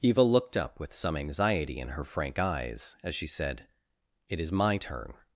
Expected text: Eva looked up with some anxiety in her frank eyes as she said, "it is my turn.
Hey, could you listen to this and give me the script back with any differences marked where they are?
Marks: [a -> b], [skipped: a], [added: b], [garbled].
Eva looked up with some anxiety in her frank eyes as she said, "it is my turn.